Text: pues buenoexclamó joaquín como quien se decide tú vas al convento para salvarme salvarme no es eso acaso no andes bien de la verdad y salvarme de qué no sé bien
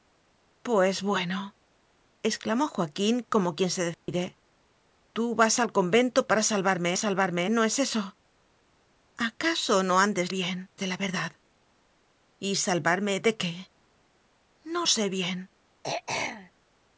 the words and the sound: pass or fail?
fail